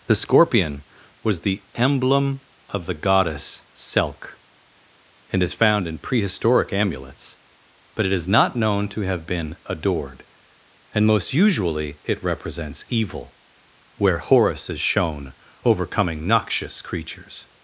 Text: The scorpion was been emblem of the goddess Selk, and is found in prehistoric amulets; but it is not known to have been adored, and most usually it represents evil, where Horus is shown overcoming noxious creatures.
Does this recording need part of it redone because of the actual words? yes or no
yes